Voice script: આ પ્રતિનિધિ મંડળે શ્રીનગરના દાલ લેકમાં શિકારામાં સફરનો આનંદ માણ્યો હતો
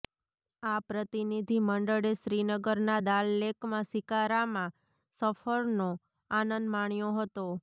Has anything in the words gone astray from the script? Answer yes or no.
no